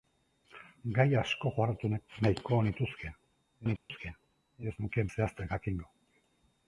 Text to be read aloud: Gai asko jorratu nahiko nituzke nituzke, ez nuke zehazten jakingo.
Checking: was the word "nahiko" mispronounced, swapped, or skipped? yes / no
no